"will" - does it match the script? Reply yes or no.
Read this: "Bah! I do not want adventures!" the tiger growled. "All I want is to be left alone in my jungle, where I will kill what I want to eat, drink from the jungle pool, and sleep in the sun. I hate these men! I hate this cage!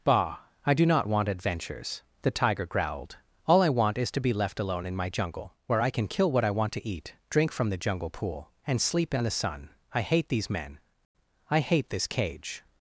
no